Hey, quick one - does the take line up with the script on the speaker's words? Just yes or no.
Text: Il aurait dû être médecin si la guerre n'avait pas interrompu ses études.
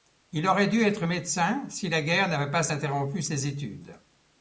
yes